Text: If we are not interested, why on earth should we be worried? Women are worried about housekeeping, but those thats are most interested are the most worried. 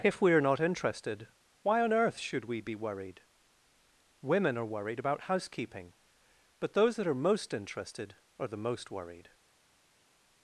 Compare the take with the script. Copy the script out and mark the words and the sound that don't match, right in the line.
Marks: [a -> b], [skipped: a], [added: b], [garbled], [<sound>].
If we are not interested, why on earth should we be worried? Women are worried about housekeeping, but those [thats -> that] are most interested are the most worried.